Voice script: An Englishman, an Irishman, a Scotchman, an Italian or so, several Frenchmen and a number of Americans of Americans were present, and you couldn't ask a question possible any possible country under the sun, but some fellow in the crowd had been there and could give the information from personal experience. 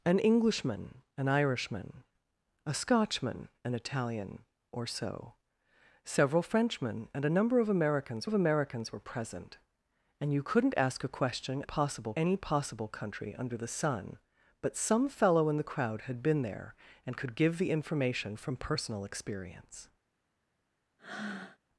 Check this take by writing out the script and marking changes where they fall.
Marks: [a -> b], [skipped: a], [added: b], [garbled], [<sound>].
An Englishman, an Irishman, a Scotchman, an Italian or so, several Frenchmen and a number of Americans of Americans were present, and you couldn't ask a question possible any possible country under the sun, but some fellow in the crowd had been there and could give the information from personal experience. [breath]